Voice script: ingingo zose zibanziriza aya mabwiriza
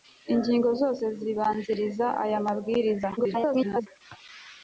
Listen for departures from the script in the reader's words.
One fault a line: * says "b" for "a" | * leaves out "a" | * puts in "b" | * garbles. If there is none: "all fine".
* garbles